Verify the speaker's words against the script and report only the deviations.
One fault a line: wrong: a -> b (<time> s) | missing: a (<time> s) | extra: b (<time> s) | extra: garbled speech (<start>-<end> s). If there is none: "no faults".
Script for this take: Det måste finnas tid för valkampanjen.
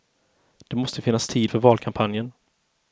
no faults